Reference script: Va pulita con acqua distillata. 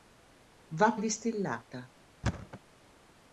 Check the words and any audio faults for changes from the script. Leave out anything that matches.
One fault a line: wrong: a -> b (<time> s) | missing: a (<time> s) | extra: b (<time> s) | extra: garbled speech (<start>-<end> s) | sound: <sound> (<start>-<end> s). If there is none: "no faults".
missing: pulita con acqua (0.9 s)
sound: thud (2.2-2.6 s)